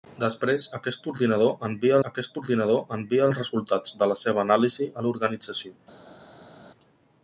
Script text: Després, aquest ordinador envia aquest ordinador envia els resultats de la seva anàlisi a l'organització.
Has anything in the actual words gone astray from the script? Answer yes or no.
no